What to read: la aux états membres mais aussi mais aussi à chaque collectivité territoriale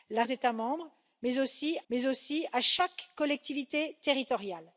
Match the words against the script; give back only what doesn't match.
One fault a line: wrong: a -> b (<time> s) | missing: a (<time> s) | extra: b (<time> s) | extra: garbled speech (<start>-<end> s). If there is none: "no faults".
no faults